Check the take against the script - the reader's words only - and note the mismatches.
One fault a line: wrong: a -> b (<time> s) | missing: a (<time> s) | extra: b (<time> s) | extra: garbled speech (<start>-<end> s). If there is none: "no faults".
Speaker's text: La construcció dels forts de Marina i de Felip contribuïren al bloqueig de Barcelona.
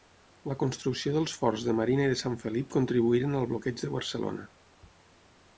extra: Sant (2.2 s)